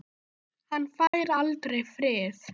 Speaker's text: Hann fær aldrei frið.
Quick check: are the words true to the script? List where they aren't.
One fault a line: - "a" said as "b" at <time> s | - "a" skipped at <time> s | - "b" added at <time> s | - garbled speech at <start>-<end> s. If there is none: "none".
none